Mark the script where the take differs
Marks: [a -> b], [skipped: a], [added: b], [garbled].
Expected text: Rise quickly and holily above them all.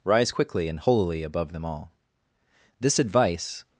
Rise quickly and holily above them all. [added: This advice]